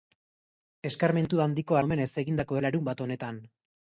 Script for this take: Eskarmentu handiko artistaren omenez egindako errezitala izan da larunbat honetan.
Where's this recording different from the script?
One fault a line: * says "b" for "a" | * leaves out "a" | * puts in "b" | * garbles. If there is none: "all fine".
* leaves out "artistaren"
* leaves out "errezitala izan da"